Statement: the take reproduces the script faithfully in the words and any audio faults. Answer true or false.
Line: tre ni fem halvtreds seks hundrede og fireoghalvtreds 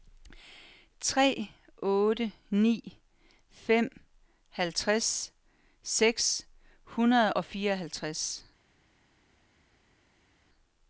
false